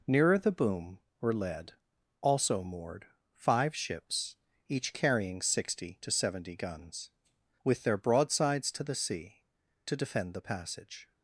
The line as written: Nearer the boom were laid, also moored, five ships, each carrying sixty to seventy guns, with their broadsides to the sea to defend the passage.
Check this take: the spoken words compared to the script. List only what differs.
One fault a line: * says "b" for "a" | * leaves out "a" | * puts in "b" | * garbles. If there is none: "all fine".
* says "led" for "laid"